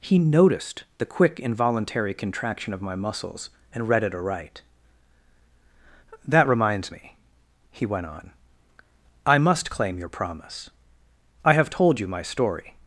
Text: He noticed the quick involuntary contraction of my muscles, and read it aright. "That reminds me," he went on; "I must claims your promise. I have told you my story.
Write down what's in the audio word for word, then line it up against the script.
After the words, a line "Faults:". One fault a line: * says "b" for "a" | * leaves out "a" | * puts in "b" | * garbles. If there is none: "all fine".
He noticed the quick involuntary contraction of my muscles, and read it aright. "That reminds me," he went on; "I must claim your promise. I have told you my story.
Faults:
* says "claim" for "claims"